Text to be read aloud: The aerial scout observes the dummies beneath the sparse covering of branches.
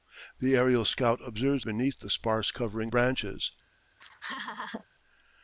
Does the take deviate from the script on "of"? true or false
true